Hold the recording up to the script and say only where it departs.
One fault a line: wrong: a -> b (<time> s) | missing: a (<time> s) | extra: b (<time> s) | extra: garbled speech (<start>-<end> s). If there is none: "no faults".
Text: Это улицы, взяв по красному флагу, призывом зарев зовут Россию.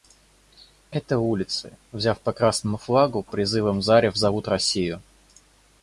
no faults